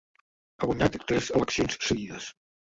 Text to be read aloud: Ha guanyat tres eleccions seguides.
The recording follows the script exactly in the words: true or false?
true